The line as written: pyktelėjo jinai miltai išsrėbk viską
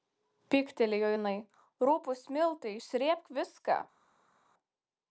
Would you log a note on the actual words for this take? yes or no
yes